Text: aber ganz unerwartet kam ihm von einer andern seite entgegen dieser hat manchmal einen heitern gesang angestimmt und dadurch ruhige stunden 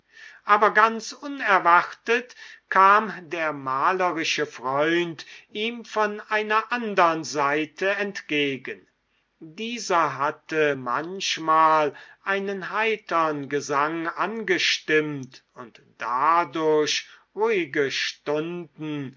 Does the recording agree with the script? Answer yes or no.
no